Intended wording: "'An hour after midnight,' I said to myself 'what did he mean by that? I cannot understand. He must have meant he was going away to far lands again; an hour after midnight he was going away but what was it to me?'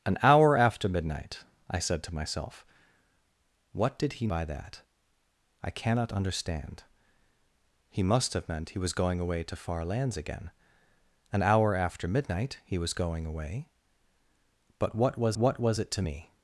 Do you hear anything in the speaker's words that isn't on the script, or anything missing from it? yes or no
yes